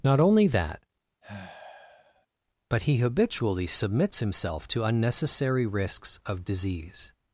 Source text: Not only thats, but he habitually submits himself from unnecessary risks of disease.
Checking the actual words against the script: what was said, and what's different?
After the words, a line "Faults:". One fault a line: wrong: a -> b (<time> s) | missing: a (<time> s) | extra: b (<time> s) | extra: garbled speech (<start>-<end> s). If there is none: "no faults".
Not only that, but he habitually submits himself to unnecessary risks of disease.
Faults:
wrong: thats -> that (0.5 s)
wrong: from -> to (4.7 s)